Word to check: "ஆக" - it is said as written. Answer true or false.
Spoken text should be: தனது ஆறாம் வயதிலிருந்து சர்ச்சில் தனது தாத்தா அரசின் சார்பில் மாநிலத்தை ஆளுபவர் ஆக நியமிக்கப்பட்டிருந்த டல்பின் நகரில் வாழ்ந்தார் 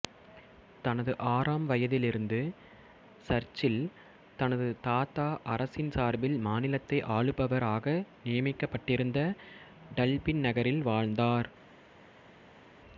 true